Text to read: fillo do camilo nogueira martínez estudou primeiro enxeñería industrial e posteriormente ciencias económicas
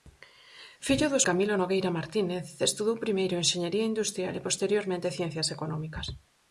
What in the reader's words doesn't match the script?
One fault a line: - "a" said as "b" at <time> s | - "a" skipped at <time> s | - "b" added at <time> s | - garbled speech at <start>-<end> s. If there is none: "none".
none